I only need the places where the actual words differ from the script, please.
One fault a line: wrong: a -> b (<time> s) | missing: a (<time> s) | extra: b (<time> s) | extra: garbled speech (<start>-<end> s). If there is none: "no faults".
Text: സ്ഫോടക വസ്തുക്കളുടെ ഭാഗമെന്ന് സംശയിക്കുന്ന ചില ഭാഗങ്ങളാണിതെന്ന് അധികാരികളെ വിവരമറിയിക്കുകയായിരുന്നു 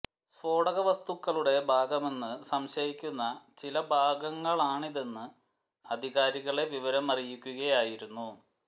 no faults